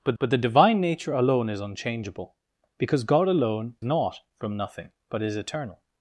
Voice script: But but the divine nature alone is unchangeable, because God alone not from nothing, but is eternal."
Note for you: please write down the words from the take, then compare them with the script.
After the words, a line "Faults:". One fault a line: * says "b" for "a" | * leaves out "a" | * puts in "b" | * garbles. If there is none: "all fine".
But but the divine nature alone is unchangeable, because God alone not from nothing, but is eternal."
Faults:
all fine